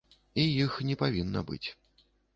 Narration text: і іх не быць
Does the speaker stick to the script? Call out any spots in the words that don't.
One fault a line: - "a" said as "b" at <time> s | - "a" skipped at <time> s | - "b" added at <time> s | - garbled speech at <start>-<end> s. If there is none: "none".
- "павінна" added at 1.0 s